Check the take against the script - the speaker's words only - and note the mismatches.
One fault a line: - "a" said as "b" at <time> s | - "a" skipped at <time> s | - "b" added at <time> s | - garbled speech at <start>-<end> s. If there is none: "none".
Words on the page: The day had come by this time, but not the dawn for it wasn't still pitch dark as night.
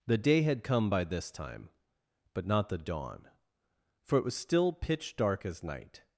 - "wasn't" said as "was" at 4.2 s